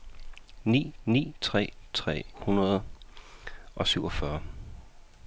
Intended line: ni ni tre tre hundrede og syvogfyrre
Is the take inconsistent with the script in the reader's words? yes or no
no